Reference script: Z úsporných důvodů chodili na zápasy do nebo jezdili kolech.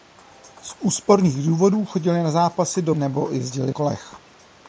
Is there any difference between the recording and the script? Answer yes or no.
no